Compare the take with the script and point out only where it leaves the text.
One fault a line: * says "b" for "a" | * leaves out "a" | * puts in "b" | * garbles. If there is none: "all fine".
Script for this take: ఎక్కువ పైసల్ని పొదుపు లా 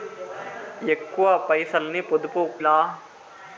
all fine